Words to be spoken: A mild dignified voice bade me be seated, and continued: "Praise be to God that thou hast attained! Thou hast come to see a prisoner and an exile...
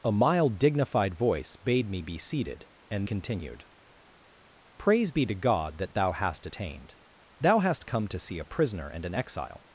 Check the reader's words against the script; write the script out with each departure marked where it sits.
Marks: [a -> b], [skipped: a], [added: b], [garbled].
A mild dignified voice bade me be seated, and continued: "Praise be to God that thou hast attained! Thou hast come to see a prisoner and an exile...